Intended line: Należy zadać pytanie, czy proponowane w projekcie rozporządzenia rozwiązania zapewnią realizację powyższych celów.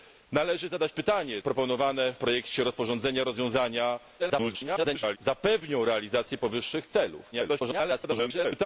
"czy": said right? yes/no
no